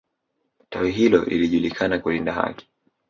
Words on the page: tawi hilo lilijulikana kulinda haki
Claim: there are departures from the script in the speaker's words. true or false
false